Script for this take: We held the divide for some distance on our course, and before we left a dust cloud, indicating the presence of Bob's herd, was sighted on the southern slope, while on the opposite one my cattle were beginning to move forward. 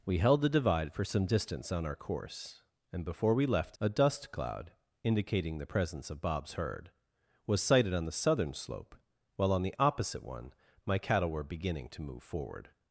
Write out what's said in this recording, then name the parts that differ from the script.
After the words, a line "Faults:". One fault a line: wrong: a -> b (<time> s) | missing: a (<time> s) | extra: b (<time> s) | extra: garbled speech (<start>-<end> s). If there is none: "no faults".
We held the divide for some distance on our course, and before we left a dust cloud, indicating the presence of Bob's herd, was sighted on the southern slope, while on the opposite one my cattle were beginning to move forward.
Faults:
no faults